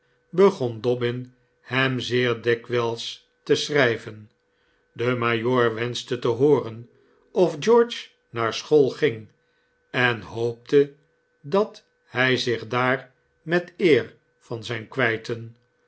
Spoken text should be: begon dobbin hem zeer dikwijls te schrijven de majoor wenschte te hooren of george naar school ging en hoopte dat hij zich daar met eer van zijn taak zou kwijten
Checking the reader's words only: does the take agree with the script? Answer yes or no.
no